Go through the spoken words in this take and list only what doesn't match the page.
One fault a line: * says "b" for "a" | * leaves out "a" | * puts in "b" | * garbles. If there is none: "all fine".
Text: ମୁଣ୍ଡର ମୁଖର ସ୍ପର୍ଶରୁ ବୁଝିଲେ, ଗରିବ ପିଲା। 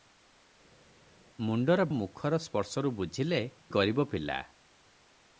all fine